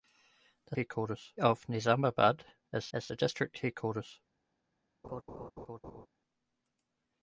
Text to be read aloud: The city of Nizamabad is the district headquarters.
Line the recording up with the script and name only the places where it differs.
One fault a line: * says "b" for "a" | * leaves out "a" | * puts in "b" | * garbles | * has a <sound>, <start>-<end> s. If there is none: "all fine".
* says "headquarters" for "city"
* puts in "is"
* has a laugh, 5.0-6.1 s